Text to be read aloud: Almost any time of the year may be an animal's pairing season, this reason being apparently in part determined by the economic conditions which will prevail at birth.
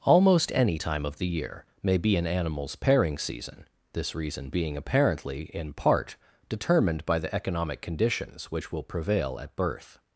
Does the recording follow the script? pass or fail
pass